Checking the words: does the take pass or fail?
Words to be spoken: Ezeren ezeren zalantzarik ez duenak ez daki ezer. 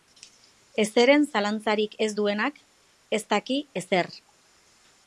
fail